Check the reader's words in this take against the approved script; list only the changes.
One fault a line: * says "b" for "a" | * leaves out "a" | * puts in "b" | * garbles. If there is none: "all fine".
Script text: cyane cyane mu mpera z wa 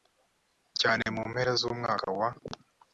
* leaves out "cyane"
* puts in "umwaka"